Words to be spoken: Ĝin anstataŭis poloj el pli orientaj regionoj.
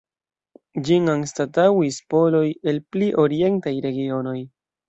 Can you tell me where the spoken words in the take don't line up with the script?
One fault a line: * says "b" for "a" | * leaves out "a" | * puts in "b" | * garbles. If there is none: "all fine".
all fine